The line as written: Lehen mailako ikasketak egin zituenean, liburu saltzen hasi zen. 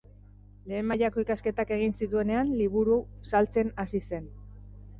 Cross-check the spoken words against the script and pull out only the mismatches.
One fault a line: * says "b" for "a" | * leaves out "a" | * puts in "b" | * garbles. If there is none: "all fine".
all fine